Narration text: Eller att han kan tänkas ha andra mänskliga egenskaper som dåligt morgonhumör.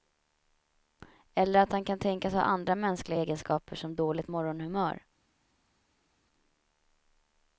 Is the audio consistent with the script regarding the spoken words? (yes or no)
yes